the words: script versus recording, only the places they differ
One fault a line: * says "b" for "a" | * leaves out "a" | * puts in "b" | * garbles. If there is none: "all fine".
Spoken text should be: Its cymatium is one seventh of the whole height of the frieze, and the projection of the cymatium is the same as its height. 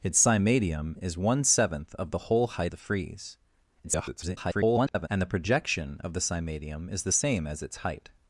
* leaves out "of"
* garbles